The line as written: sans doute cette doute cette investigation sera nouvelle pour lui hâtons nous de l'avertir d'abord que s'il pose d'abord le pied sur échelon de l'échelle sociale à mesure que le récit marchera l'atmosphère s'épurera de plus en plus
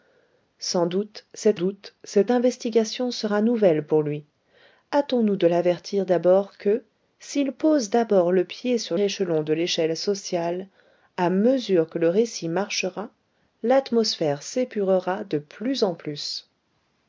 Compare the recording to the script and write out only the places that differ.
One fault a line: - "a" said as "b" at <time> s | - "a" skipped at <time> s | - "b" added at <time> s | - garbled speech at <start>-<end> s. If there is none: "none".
none